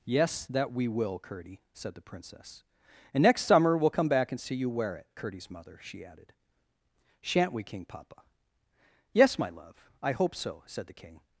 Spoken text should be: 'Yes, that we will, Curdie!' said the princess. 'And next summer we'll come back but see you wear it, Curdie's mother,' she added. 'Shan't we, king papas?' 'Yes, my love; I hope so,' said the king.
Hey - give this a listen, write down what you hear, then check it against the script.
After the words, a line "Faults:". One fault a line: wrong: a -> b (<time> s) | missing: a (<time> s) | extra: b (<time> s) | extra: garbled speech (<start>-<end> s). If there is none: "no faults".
'Yes, that we will, Curdie!' said the princess. 'And next summer we'll come back and see you wear it, Curdie's mother,' she added. 'Shan't we, king papa?' 'Yes, my love; I hope so,' said the king.
Faults:
wrong: but -> and (4.3 s)
wrong: papas -> papa (7.8 s)